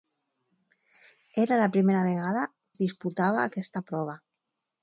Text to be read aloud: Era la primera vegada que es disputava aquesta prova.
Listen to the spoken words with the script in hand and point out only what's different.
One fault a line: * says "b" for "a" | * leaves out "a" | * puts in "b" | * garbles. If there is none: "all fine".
* leaves out "que"